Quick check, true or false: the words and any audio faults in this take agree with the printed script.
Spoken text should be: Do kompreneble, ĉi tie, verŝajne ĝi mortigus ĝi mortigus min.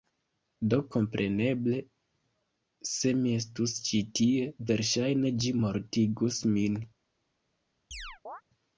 false